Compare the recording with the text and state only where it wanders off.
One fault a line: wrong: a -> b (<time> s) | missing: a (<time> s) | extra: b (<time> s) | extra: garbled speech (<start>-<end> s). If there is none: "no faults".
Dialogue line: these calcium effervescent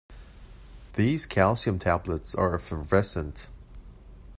extra: tablets are (1.8 s)